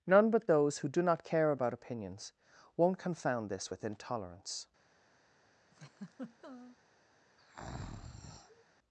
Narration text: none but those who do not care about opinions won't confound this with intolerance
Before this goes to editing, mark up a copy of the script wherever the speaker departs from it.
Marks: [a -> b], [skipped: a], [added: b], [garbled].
none but those who do not care about opinions won't confound this with intolerance